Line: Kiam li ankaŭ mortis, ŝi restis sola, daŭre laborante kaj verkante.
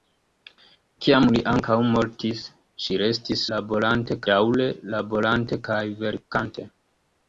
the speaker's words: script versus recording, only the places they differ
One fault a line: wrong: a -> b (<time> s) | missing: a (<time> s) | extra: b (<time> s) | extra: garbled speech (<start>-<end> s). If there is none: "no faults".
wrong: sola -> laborante (3.6 s)